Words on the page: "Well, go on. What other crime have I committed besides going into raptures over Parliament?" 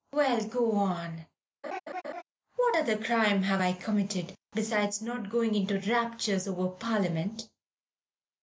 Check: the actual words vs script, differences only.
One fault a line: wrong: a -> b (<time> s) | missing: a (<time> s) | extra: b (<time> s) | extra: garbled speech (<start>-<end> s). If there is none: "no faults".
extra: not (5.0 s)